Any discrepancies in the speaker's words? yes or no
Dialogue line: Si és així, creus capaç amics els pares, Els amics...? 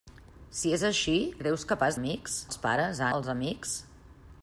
no